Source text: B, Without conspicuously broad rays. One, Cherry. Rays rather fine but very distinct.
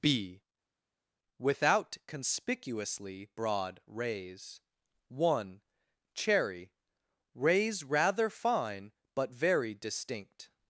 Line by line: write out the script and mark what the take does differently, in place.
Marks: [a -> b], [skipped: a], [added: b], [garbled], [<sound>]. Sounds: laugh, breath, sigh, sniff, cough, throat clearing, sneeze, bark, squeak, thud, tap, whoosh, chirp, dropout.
B, Without conspicuously broad rays. One, Cherry. Rays rather fine but very distinct.